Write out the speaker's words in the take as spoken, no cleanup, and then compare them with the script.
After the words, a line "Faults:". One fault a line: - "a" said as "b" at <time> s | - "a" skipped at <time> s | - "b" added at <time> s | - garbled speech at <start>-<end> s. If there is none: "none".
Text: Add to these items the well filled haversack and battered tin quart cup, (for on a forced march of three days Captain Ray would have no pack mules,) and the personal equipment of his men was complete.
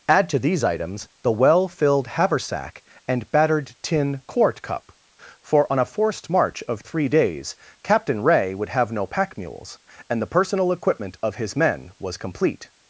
Add to these items the well filled haversack and battered tin quart cup, (for on a forced march of three days Captain Ray would have no pack mules,) and the personal equipment of his men was complete.
Faults:
none